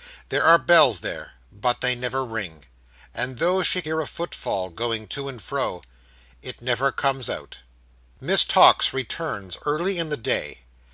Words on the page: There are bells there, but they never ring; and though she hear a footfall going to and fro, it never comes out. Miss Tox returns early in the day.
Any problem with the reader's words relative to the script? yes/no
no